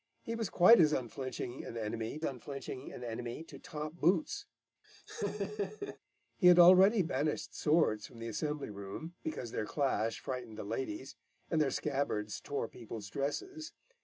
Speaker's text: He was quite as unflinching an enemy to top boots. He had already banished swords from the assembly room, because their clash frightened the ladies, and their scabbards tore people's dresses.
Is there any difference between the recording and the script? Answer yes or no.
yes